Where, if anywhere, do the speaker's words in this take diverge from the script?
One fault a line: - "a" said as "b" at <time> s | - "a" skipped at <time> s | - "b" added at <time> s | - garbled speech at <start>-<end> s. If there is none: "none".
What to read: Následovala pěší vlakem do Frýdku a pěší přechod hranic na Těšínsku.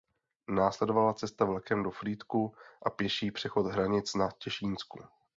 - "pěší" said as "cesta" at 1.1 s